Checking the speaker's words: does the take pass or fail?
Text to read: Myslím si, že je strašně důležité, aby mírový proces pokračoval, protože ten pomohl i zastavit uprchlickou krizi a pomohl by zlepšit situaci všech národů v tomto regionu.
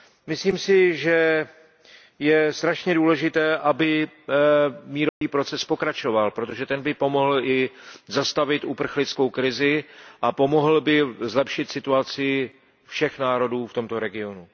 fail